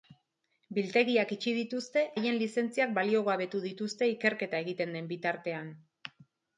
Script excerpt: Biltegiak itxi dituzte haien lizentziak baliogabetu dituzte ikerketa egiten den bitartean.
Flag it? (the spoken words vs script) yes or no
no